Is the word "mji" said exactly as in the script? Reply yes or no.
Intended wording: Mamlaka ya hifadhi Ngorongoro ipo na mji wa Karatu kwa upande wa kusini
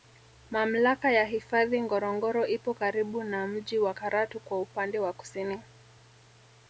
yes